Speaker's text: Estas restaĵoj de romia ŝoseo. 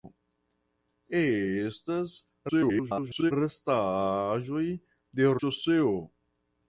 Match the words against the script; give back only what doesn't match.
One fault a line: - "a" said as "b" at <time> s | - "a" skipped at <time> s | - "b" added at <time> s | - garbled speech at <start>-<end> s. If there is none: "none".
- garbled speech at 2.5-3.3 s
- "romia" skipped at 5.3 s